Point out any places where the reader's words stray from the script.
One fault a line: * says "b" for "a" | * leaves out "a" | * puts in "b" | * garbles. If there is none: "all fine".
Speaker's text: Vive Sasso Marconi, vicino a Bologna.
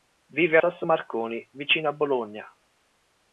all fine